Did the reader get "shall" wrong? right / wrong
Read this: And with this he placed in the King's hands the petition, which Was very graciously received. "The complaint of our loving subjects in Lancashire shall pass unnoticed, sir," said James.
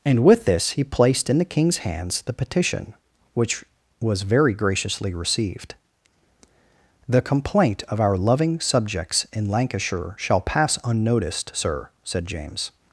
right